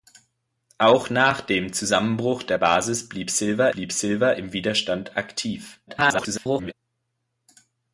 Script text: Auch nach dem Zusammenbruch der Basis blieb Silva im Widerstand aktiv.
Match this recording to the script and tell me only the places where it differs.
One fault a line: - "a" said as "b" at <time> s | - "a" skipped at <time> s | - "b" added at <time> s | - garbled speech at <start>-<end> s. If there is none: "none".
- "blieb Silva" added at 3.7 s
- garbled speech at 5.9-6.7 s